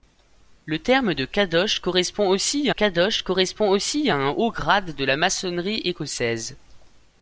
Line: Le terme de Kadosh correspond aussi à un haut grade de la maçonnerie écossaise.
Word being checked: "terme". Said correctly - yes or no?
yes